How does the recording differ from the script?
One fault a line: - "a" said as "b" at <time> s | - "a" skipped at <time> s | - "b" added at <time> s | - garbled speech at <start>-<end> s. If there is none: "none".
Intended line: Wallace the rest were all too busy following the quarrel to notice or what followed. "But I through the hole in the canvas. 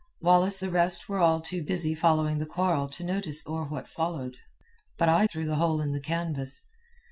none